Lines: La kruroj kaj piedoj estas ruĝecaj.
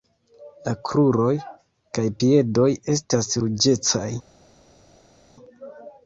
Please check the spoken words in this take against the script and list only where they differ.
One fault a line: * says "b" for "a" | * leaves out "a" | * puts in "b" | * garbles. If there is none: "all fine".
all fine